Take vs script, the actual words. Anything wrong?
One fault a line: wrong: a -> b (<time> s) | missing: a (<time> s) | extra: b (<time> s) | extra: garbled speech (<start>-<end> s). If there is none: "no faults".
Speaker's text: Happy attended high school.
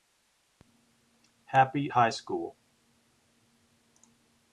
missing: attended (1.9 s)